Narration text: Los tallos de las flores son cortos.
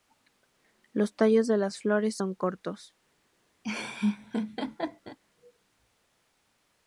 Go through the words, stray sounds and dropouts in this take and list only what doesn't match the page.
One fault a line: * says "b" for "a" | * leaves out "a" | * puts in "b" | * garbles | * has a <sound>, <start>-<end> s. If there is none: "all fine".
* has a laugh, 3.6-5.2 s